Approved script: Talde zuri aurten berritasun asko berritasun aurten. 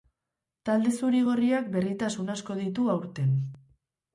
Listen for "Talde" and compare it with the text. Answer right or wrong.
right